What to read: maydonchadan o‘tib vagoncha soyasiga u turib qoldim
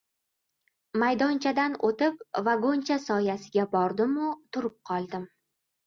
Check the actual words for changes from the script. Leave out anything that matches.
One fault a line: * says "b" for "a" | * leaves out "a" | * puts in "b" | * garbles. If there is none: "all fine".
* puts in "bordim"